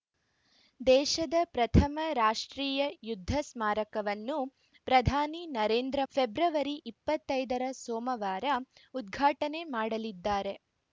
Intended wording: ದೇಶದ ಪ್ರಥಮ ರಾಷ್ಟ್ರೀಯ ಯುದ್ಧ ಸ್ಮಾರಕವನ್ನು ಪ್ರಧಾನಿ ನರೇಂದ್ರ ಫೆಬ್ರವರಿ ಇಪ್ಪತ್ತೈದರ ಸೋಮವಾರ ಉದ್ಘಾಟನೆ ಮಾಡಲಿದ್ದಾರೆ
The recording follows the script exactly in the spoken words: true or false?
true